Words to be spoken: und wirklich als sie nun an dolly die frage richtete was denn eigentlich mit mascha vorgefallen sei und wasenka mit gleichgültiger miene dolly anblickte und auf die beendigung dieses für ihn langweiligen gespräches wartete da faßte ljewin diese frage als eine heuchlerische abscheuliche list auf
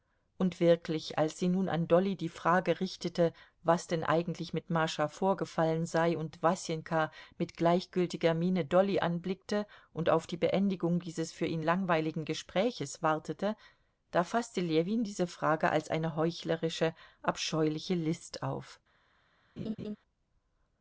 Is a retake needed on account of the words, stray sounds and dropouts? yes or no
yes